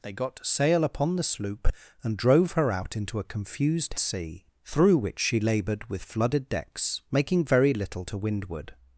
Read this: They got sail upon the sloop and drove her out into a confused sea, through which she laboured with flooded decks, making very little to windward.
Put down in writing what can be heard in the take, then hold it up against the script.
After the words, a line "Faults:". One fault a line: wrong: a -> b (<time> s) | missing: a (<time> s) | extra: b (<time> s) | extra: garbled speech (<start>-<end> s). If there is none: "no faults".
They got sail upon the sloop and drove her out into a confused sea, through which she laboured with flooded decks, making very little to windward.
Faults:
no faults